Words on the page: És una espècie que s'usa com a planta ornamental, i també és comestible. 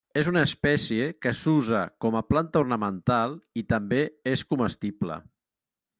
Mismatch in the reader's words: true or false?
false